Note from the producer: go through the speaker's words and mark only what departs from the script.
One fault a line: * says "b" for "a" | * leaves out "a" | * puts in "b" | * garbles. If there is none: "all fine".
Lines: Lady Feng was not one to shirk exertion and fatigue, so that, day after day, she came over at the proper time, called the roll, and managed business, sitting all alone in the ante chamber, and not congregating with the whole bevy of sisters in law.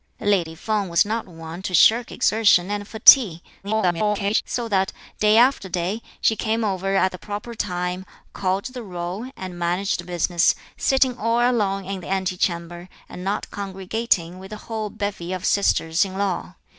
* garbles